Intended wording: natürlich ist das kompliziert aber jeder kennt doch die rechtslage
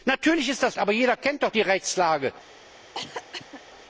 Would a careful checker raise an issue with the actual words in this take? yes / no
yes